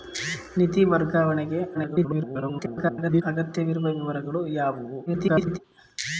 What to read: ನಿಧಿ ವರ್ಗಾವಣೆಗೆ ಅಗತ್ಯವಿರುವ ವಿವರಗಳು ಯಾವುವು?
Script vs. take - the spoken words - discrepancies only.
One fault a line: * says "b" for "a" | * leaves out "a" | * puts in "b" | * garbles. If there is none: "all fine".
* garbles
* garbles